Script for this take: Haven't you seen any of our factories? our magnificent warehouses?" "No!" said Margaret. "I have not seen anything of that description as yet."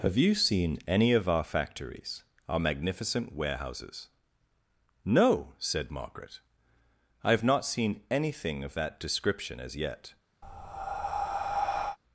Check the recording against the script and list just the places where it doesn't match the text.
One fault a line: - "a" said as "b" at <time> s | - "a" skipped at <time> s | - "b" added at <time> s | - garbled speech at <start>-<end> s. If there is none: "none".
- "Haven't" said as "Have" at 0.0 s